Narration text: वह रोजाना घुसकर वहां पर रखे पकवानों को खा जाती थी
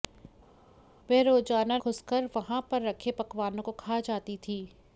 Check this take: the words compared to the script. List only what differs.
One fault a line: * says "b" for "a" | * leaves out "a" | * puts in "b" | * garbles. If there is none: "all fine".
all fine